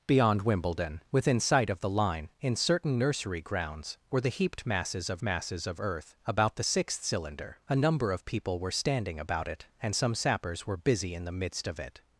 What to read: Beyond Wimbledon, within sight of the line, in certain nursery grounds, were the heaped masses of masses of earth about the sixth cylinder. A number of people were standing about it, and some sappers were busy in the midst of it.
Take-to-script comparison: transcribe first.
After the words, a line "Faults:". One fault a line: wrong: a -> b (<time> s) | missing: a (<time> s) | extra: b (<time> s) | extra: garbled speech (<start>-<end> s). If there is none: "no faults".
Beyond Wimbledon, within sight of the line, in certain nursery grounds, were the heaped masses of masses of earth about the sixth cylinder. A number of people were standing about it, and some sappers were busy in the midst of it.
Faults:
no faults